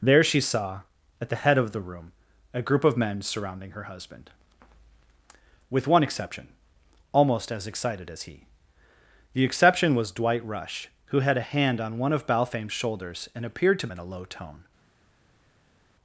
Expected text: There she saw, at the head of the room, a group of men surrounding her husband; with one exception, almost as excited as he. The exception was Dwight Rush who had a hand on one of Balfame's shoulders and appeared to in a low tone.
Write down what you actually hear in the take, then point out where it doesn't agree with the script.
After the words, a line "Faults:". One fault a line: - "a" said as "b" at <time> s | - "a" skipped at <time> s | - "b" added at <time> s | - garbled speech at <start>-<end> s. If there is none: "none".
There she saw, at the head of the room, a group of men surrounding her husband; with one exception, almost as excited as he. The exception was Dwight Rush who had a hand on one of Balfame's shoulders and appeared to in a low tone.
Faults:
none